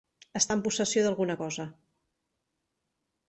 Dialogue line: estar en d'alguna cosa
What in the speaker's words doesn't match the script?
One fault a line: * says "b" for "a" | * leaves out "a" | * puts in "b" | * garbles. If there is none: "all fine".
* puts in "possessió"